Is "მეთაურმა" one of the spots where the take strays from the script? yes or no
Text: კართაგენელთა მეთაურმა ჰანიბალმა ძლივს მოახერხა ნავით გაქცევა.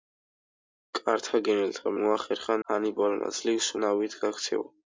yes